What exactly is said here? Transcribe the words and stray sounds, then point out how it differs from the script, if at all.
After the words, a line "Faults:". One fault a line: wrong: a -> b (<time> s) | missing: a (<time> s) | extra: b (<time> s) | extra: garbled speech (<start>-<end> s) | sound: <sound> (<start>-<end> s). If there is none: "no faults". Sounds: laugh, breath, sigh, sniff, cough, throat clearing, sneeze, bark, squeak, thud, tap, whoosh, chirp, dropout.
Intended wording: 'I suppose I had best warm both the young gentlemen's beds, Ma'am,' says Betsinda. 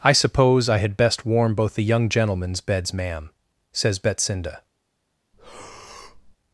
'I suppose I had best warm both the young gentlemen's beds, Ma'am,' says Betsinda.
Faults:
sound: breath (5.3-6.4 s)